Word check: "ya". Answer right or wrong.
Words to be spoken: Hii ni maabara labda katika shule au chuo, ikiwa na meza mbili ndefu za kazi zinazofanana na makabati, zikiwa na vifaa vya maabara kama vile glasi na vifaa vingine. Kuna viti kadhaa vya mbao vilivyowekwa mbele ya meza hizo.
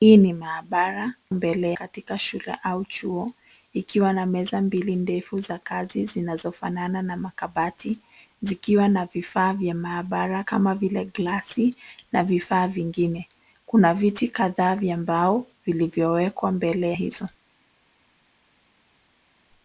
wrong